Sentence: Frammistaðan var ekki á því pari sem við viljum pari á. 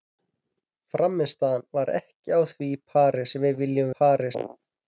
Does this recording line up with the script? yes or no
yes